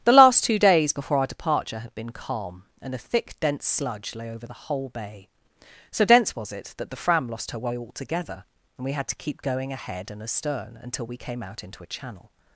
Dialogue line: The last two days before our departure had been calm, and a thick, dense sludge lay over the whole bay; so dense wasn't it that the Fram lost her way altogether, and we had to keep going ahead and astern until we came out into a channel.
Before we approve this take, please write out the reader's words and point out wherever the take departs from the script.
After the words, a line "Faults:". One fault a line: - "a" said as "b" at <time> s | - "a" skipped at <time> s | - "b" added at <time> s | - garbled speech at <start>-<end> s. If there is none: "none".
The last two days before our departure had been calm, and a thick, dense sludge lay over the whole bay; so dense was it that the Fram lost her way altogether, and we had to keep going ahead and astern until we came out into a channel.
Faults:
- "wasn't" said as "was" at 6.3 s